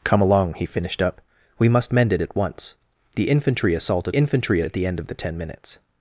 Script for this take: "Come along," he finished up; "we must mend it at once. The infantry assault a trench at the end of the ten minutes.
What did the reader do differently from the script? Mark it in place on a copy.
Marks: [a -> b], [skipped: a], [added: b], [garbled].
"Come along," he finished up; "we must mend it at once. The infantry assault a [trench -> infantry] at the end of the ten minutes.